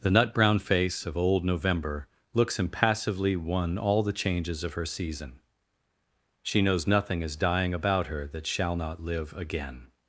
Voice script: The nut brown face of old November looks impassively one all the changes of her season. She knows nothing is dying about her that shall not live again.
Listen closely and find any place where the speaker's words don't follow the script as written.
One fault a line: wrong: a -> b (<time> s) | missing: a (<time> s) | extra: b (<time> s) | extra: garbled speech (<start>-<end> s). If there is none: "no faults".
no faults